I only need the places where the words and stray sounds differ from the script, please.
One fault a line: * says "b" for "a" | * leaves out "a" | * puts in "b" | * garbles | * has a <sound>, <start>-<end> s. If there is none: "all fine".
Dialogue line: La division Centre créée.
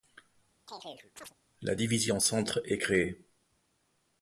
* has a chirp, 0.7-1.3 s
* puts in "est"